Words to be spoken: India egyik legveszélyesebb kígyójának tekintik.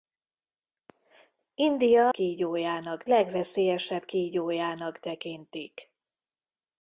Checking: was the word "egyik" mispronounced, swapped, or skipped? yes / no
yes